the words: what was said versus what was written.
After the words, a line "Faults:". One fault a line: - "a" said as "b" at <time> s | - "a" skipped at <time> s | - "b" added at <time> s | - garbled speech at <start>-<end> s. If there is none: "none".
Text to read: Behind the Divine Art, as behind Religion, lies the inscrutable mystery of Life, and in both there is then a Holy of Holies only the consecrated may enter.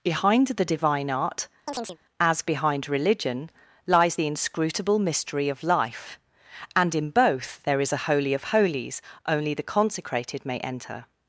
Behind the Divine Art, as behind Religion, lies the inscrutable mystery of Life, and in both there is a Holy of Holies only the consecrated may enter.
Faults:
- "then" skipped at 7.9 s